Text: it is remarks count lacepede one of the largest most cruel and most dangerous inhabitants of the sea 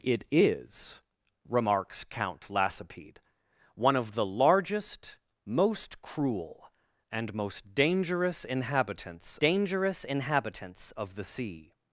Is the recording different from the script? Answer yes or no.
yes